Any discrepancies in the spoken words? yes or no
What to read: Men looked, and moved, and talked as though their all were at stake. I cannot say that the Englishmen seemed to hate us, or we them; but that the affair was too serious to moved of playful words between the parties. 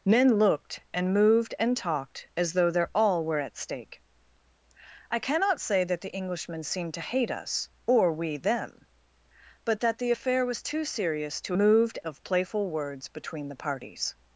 no